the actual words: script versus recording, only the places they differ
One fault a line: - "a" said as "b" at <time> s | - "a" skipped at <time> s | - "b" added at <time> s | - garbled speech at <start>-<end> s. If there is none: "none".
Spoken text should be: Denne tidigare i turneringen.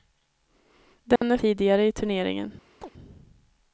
none